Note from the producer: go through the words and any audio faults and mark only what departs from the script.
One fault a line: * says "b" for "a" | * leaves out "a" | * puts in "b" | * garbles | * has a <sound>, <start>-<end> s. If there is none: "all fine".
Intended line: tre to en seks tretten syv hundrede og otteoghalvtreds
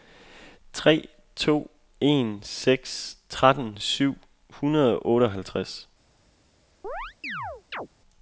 * has a chirp, 6.8-7.9 s